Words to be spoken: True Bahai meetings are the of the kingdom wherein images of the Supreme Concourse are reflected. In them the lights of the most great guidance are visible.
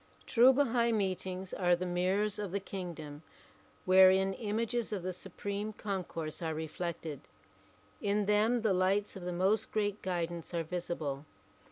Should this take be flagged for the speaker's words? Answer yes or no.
yes